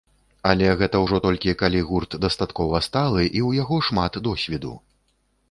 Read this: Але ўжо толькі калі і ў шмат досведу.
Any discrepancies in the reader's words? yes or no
yes